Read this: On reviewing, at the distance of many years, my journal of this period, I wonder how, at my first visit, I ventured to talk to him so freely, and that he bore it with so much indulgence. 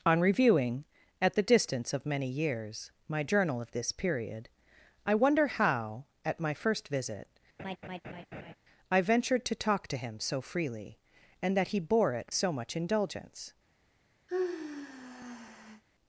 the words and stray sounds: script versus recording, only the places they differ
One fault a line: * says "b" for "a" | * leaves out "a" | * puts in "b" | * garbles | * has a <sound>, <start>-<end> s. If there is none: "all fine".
* has a laugh, 7.6-8.6 s
* leaves out "with"
* has a sigh, 14.3-15.8 s